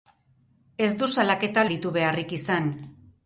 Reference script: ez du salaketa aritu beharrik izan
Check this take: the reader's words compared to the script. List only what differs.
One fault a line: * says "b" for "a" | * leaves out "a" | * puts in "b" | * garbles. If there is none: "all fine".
all fine